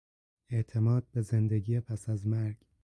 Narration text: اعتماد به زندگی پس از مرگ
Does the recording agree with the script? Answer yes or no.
yes